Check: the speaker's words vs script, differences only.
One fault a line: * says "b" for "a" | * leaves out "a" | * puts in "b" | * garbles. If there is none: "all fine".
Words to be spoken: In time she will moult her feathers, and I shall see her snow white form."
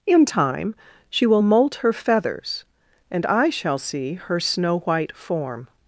all fine